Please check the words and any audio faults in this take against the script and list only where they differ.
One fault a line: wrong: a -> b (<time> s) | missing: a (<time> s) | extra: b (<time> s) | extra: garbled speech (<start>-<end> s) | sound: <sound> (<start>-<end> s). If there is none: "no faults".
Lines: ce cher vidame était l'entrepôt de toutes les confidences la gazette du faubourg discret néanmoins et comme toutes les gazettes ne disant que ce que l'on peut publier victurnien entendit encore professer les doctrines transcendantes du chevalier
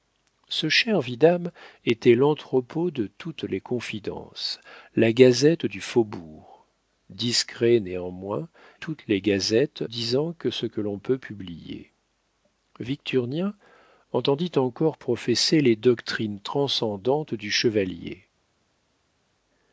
missing: et comme (8.5 s)
missing: ne (9.8 s)